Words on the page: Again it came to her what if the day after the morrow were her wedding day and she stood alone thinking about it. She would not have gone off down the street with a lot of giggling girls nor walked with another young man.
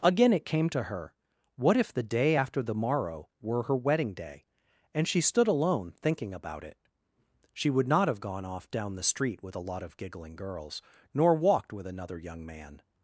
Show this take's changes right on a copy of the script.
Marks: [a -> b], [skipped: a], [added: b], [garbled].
Again it came to her what if the day after the morrow were her wedding day and she stood alone thinking about it. She would not have gone off down the street with a lot of giggling girls nor walked with another young man.